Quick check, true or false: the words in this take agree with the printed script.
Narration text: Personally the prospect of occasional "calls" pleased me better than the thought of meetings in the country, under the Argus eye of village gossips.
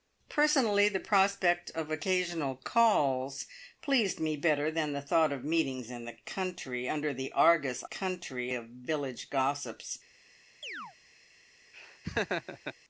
false